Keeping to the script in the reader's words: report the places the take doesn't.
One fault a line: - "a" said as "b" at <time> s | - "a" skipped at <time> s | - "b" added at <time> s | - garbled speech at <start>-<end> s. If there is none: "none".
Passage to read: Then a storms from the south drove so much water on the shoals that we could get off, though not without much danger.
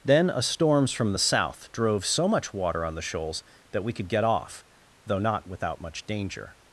none